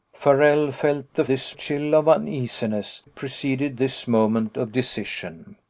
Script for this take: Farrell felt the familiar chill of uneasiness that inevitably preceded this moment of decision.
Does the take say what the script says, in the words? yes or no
no